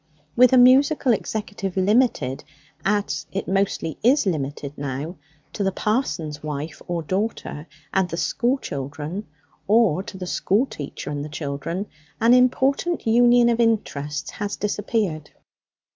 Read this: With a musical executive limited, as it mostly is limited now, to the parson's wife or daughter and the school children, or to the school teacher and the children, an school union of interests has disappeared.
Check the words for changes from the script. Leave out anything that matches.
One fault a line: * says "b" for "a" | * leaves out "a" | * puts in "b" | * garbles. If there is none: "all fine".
* says "important" for "school"